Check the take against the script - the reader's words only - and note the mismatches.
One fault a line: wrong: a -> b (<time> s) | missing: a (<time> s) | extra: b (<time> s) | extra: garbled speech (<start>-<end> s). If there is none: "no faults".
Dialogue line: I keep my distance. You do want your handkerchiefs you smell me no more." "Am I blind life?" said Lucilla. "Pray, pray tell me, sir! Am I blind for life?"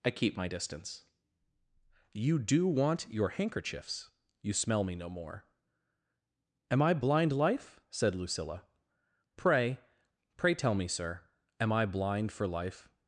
no faults